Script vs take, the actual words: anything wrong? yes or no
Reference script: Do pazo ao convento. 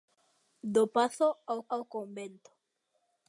yes